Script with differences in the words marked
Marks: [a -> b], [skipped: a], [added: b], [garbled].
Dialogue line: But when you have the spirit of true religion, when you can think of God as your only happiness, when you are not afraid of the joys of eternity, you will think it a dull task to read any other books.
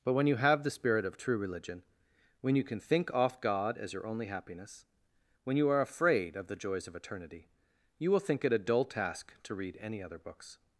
But when you have the spirit of true religion, when you can think [of -> off] God as your only happiness, when you are [skipped: not] afraid of the joys of eternity, you will think it a dull task to read any other books.